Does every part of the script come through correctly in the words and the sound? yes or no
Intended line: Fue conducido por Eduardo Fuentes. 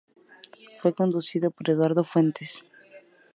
yes